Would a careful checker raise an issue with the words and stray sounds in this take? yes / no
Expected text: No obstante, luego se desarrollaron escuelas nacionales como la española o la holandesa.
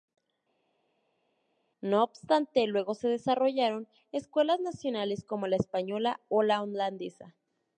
no